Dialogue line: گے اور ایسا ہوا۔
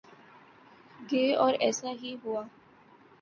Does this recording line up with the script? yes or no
no